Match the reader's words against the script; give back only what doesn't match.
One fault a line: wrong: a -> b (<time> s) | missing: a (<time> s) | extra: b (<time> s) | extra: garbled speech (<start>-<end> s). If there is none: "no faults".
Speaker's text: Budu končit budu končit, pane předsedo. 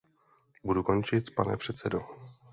missing: budu končit (1.3 s)